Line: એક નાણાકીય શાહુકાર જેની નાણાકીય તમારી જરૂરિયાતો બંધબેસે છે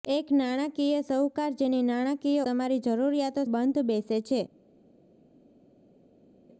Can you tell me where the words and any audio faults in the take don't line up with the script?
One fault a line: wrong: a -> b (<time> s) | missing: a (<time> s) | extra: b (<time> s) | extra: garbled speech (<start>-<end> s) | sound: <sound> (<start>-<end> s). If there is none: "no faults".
no faults